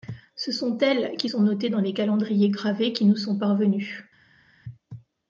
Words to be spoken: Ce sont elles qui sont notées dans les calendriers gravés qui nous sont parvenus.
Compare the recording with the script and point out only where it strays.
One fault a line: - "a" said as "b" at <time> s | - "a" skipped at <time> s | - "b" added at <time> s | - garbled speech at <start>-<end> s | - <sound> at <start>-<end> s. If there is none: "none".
none